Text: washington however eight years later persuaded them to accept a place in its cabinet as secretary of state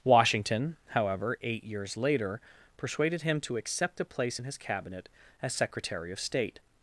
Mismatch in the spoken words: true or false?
true